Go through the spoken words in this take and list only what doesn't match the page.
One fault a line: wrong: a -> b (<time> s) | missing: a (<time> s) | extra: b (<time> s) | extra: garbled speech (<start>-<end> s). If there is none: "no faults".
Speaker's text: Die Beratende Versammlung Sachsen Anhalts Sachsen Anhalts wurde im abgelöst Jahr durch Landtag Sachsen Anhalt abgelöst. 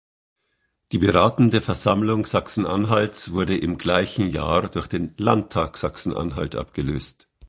missing: Sachsen Anhalts (3.3 s)
wrong: abgelöst -> gleichen (3.8 s)
extra: den (4.9 s)